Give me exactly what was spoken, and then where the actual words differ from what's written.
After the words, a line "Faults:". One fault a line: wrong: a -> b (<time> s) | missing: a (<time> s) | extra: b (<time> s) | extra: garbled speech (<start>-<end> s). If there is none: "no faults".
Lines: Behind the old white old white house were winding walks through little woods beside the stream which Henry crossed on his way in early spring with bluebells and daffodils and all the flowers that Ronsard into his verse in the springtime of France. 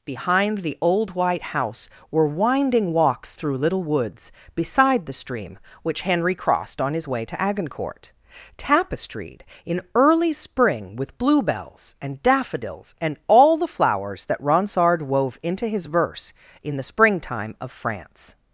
Behind the old white house were winding walks through little woods beside the stream which Henry crossed on his way to Agincourt; tapestried in early spring with bluebells and daffodils and all the flowers that Ronsard wove into his verse in the springtime of France.
Faults:
missing: old white (1.5 s)
extra: to Agincourt tapestried (7.2 s)
extra: wove (15.0 s)